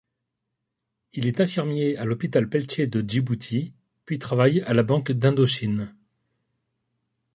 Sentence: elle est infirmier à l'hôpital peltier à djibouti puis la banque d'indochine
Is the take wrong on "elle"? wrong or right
wrong